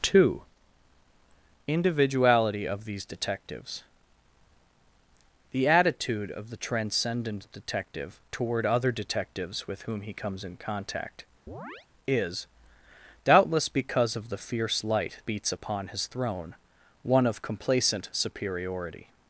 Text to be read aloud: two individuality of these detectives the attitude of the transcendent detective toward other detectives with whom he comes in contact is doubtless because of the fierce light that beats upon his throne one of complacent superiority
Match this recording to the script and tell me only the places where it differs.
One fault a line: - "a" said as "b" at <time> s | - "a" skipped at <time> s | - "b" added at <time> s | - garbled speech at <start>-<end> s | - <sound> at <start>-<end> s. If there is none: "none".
- chirp at 11.5-11.9 s
- "that" skipped at 15.2 s